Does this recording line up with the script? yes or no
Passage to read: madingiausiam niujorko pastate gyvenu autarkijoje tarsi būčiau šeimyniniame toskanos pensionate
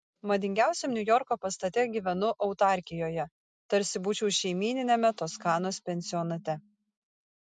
yes